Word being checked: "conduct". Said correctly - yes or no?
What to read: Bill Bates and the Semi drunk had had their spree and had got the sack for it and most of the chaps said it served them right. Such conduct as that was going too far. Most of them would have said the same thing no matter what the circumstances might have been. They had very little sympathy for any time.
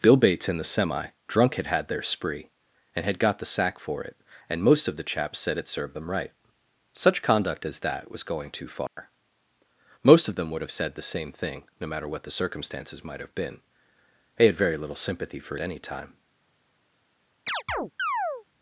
yes